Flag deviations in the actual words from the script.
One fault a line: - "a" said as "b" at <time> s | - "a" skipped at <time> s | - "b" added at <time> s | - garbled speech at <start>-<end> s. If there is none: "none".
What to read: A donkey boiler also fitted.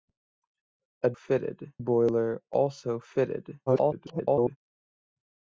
- "donkey" said as "fitted" at 1.1 s
- garbled speech at 3.7-4.6 s